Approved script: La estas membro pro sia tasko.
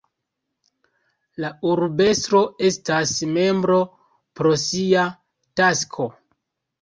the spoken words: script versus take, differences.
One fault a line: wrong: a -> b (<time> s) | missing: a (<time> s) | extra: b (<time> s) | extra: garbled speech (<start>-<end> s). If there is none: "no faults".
extra: urbestro (1.7 s)